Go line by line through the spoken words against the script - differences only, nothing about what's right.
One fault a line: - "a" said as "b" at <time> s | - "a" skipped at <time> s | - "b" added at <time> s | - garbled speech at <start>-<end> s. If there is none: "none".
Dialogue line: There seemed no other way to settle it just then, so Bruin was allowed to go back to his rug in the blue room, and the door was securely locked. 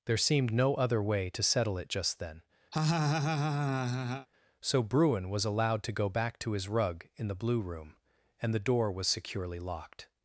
none